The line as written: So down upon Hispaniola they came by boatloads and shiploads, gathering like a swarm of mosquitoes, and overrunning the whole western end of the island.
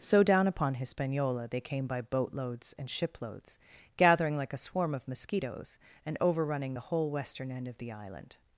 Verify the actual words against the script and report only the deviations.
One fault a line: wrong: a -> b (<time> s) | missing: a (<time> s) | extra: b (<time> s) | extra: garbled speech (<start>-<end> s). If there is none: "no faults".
no faults